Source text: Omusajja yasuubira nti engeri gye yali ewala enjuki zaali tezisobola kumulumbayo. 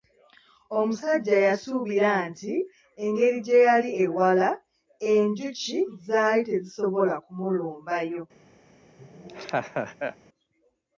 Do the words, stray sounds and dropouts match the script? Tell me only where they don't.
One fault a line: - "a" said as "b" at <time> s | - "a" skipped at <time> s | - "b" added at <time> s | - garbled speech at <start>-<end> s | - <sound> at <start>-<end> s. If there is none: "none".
- laugh at 9.0-10.2 s